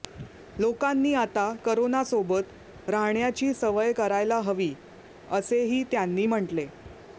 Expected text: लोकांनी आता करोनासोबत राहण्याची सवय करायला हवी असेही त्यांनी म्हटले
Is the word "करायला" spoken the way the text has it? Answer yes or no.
yes